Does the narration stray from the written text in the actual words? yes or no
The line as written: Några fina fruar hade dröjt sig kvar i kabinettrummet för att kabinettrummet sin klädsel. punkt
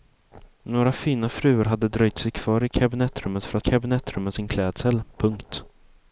no